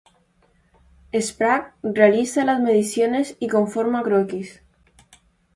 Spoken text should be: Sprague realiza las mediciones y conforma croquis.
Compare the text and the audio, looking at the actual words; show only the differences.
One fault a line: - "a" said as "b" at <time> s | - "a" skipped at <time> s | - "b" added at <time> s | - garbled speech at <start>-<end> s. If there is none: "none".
none